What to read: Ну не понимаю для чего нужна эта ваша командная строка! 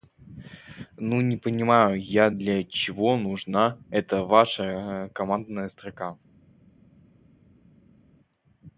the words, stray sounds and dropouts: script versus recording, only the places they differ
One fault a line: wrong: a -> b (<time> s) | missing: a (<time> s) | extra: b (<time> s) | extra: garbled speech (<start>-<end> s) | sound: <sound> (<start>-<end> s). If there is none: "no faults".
extra: я (2.0 s)